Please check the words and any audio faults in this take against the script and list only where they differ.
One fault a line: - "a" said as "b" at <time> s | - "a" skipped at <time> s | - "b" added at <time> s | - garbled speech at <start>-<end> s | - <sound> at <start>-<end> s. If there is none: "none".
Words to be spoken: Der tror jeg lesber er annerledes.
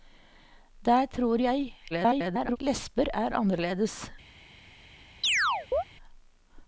- garbled speech at 1.9-2.6 s
- chirp at 5.2-5.8 s